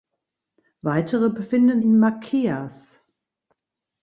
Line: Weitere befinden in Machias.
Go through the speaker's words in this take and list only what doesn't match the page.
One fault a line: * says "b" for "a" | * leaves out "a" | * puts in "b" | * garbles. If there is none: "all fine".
all fine